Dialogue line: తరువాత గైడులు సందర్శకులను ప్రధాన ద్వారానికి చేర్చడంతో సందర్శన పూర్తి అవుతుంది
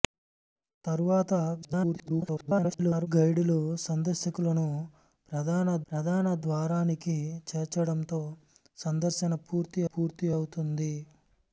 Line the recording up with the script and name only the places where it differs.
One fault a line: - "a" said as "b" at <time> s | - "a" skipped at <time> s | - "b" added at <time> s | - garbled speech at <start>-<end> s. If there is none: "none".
- garbled speech at 1.6-3.1 s
- "ప్రధాన" added at 5.9 s
- "పూర్తి" added at 9.9 s